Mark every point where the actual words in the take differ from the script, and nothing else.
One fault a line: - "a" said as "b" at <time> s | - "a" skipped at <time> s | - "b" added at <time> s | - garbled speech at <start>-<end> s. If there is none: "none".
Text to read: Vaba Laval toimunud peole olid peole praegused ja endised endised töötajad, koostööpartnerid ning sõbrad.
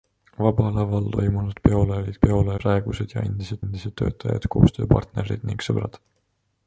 none